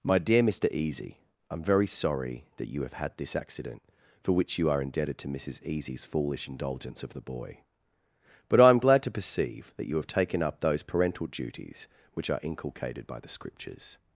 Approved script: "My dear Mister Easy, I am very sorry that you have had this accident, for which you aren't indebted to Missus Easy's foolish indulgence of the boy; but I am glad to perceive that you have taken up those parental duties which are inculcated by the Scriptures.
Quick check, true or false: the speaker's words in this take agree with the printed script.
false